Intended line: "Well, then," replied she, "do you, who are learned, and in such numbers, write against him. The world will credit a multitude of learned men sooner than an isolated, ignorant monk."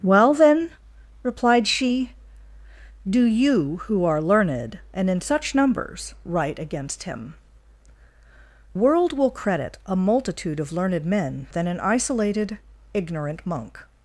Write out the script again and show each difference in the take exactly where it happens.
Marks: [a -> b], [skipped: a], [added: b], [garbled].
"Well, then," replied she, "do you, who are learned, and in such numbers, write against him. [skipped: The] world will credit a multitude of learned men [skipped: sooner] than an isolated, ignorant monk."